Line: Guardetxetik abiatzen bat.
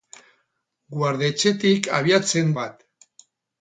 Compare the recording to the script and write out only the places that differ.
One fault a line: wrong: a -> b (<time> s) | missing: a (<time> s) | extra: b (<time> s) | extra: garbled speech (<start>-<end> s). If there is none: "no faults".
no faults